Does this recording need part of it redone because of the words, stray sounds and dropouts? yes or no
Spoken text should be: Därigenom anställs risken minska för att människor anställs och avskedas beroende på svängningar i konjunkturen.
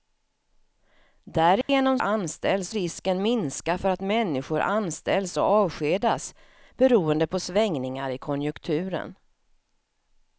yes